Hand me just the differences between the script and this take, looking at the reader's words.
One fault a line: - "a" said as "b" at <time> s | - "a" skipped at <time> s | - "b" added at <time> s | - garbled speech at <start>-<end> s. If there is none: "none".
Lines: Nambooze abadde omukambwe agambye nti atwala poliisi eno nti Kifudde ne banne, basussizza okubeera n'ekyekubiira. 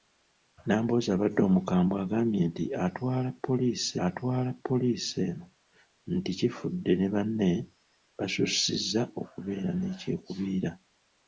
- "atwala poliisi" added at 4.1 s